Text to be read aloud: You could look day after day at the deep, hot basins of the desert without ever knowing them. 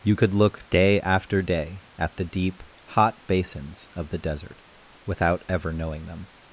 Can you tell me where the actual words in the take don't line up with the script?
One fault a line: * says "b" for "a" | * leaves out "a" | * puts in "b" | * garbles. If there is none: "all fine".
all fine